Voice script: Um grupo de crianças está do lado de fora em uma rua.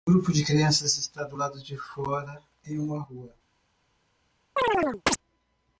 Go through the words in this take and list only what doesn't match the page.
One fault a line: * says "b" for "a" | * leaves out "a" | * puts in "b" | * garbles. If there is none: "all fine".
all fine